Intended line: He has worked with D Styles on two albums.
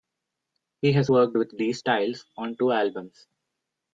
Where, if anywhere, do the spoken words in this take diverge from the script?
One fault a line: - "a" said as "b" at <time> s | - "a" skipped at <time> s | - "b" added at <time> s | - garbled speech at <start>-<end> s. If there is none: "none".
none